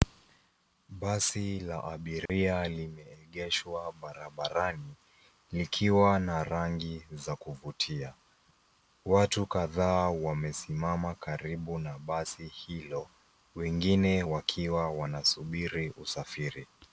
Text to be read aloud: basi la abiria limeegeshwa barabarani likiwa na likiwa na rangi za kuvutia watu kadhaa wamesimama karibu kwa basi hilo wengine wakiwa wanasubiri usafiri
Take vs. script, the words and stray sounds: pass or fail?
fail